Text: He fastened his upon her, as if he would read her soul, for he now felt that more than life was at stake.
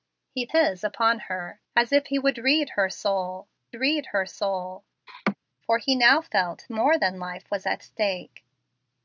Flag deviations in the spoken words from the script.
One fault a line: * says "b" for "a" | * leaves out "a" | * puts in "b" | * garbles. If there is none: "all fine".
* leaves out "fastened"
* puts in "read her soul"
* leaves out "that"